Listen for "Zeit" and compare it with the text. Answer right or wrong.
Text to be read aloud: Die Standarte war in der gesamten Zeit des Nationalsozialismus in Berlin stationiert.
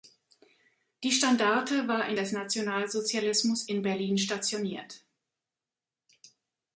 wrong